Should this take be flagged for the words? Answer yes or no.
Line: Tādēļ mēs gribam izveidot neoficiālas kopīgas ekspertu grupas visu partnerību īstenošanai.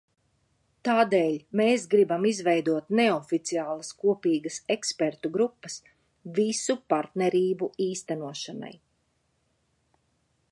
no